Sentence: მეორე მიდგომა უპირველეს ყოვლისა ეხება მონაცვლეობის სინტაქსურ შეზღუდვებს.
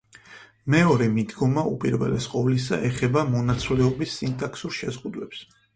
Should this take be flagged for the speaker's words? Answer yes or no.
no